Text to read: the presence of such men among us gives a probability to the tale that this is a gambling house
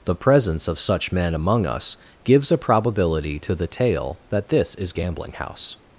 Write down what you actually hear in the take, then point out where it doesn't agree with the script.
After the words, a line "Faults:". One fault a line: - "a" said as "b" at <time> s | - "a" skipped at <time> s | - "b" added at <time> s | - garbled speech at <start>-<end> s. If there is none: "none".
the presence of such men among us gives a probability to the tale that this is gambling house
Faults:
- "a" skipped at 4.9 s